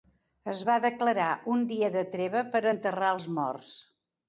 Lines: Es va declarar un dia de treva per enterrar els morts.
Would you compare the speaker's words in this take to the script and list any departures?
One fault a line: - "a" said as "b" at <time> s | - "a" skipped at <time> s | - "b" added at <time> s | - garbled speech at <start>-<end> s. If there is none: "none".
none